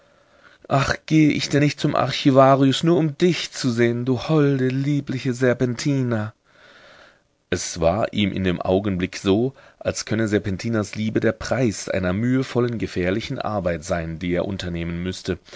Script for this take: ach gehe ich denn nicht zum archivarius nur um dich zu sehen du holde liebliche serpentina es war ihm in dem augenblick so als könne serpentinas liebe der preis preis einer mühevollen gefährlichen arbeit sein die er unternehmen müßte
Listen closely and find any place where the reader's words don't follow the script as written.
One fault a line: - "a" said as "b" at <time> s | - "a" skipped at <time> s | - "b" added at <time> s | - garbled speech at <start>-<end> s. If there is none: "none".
- "preis" skipped at 11.9 s